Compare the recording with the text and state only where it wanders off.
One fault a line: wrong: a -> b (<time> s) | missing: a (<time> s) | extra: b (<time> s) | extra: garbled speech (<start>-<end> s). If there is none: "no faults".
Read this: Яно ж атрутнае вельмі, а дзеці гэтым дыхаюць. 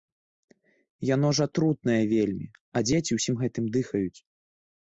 extra: ўсім (3.2 s)